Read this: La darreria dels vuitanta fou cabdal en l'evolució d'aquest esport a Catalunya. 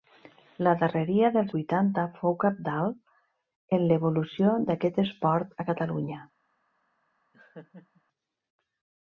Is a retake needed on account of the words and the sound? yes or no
yes